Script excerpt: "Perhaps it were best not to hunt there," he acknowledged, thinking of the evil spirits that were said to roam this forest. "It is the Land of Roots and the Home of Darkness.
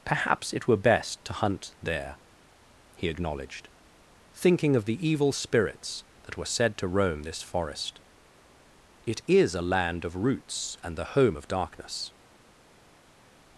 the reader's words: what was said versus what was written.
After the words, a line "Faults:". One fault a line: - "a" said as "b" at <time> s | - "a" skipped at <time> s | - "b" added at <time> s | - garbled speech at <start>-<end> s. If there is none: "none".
"Perhaps it were best to hunt there," he acknowledged, thinking of the evil spirits that were said to roam this forest. "It is a Land of Roots and the Home of Darkness.
Faults:
- "not" skipped at 1.2 s
- "the" said as "a" at 9.5 s